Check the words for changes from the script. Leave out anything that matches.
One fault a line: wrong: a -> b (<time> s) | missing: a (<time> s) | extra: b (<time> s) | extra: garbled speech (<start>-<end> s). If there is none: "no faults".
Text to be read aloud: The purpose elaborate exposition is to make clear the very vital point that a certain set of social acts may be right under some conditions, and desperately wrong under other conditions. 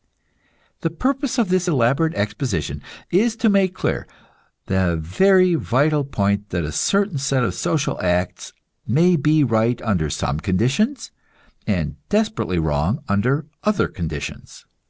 extra: of this (1.4 s)